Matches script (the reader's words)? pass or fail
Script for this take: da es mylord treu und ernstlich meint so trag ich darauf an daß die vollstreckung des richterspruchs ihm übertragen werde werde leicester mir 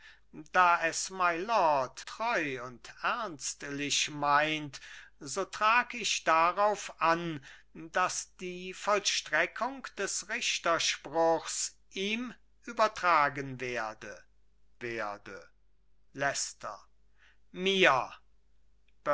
pass